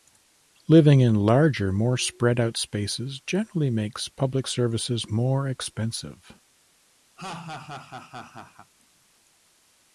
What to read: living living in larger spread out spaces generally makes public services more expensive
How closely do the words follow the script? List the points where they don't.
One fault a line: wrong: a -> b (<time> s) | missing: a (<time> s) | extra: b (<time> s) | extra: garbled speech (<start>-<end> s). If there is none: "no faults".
missing: living (1.0 s)
extra: more (1.7 s)